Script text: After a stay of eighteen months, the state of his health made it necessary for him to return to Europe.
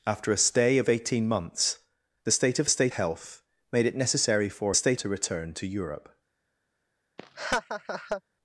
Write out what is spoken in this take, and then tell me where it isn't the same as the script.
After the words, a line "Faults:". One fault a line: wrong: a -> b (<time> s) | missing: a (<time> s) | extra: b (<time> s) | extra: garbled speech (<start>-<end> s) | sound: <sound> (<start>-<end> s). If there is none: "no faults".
After a stay of eighteen months, the state of state health made it necessary for state to return to Europe.
Faults:
wrong: his -> state (2.7 s)
wrong: him -> state (4.7 s)
sound: laugh (7.2-8.2 s)